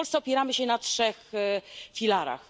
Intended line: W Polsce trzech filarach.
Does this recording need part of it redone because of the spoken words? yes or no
yes